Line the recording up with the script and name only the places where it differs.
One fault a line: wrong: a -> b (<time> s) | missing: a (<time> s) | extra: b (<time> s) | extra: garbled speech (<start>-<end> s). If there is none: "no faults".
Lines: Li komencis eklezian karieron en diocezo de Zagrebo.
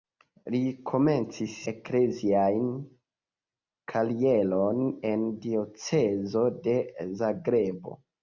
no faults